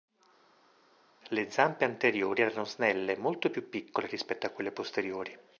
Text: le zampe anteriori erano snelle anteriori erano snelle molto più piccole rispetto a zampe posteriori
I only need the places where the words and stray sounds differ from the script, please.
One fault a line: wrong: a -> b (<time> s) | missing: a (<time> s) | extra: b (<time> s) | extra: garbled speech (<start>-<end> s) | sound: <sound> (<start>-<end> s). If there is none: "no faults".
missing: anteriori erano snelle (3.2 s)
wrong: zampe -> quelle (4.5 s)